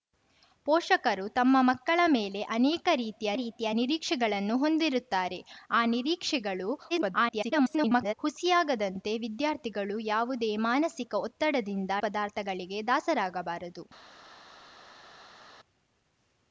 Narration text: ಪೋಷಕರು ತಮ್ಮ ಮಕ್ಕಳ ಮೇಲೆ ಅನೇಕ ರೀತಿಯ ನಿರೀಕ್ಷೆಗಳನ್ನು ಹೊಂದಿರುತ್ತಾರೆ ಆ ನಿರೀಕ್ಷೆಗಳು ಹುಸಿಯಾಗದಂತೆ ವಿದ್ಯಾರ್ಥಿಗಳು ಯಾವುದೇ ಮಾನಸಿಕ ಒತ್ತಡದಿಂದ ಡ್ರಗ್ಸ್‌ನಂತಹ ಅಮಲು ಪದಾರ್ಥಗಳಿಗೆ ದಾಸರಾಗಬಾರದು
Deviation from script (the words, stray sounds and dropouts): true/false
true